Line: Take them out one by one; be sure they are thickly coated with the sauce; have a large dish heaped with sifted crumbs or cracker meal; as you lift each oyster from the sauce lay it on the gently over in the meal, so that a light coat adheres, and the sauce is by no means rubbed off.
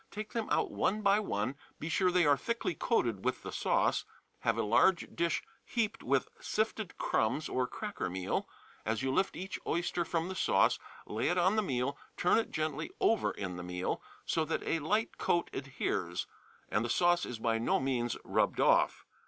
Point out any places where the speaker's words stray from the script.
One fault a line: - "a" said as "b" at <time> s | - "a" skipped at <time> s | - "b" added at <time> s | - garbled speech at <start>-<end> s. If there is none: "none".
- "meal turn it" added at 11.6 s